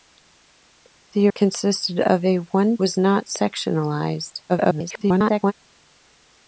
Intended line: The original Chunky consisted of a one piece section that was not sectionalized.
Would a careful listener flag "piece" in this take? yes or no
yes